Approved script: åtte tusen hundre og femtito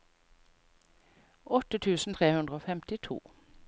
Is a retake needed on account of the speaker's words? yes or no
yes